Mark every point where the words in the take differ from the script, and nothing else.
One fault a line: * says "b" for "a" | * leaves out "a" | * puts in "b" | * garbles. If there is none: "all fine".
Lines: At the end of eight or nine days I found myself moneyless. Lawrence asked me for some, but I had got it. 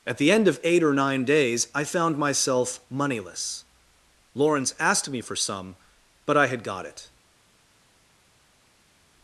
all fine